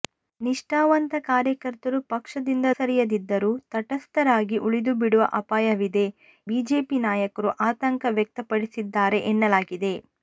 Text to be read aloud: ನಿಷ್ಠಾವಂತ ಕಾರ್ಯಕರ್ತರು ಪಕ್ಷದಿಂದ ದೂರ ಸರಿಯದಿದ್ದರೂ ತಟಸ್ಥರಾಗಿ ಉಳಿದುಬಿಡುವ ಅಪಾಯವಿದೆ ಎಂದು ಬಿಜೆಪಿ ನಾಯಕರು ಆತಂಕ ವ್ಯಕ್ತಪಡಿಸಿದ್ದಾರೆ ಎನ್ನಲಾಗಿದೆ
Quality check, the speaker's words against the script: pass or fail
fail